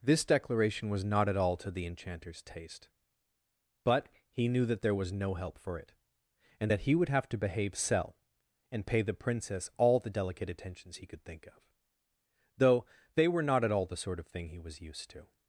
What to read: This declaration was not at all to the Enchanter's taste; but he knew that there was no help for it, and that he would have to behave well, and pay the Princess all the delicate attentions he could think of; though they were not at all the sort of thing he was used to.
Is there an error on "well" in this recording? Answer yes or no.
yes